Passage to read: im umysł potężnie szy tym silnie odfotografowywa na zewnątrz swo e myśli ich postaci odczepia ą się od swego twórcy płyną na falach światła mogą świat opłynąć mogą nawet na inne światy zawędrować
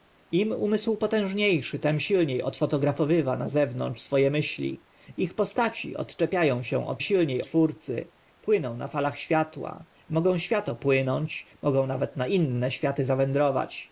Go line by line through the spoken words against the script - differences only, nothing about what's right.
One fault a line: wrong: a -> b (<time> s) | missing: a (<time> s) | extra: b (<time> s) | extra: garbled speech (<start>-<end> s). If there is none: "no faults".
wrong: swego -> silnie (7.0 s)